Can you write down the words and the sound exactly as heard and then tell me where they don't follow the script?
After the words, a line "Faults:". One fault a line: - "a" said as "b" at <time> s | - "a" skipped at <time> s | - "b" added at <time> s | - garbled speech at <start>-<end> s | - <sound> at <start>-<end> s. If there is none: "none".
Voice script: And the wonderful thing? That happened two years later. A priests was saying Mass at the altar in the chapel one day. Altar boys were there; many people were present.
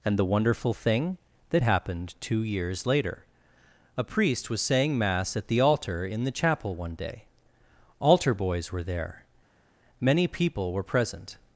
And the wonderful thing? That happened two years later. A priest was saying Mass at the altar in the chapel one day. Altar boys were there; many people were present.
Faults:
- "priests" said as "priest" at 4.0 s